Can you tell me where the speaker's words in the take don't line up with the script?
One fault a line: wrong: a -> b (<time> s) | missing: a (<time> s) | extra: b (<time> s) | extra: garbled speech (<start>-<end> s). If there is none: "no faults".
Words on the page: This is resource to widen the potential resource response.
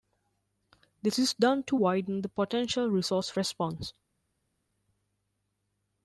wrong: resource -> done (1.4 s)